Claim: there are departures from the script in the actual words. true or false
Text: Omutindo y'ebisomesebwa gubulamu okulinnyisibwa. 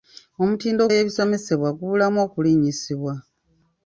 false